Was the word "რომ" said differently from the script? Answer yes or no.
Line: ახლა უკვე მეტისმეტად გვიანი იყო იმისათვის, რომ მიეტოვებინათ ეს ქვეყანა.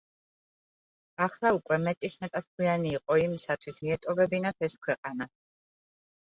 yes